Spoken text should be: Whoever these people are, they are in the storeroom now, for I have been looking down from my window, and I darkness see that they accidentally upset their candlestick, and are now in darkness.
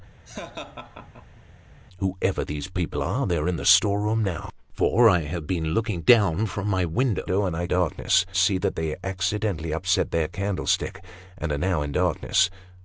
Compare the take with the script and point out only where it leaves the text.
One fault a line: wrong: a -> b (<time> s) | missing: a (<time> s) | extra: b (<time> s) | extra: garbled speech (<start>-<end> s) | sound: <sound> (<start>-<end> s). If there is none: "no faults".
sound: laugh (0.3-1.4 s)